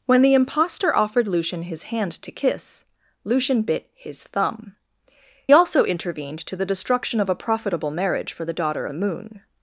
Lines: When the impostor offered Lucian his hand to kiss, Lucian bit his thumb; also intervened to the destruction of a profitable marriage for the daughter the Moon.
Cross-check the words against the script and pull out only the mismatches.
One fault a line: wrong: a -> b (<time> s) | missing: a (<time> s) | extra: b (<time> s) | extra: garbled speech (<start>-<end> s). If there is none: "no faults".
no faults